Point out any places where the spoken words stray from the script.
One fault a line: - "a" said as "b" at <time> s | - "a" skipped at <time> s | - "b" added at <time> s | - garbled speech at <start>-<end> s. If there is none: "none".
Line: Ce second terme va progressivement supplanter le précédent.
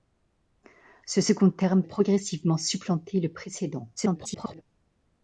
- "va" skipped at 1.8 s
- garbled speech at 4.0-4.6 s